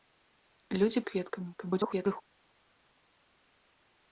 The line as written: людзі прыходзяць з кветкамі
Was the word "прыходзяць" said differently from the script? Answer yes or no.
yes